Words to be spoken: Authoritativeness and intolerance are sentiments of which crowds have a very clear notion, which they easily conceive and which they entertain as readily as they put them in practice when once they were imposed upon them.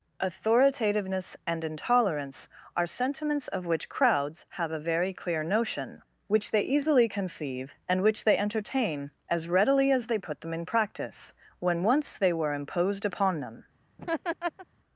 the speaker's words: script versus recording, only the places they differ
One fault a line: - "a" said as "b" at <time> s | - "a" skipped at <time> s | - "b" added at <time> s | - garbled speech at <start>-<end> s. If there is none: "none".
none